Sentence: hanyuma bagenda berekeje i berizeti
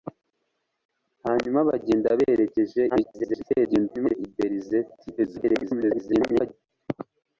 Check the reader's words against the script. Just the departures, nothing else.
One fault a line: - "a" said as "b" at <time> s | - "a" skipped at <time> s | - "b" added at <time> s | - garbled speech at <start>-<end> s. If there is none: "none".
- garbled speech at 2.9-4.2 s
- garbled speech at 5.2-6.5 s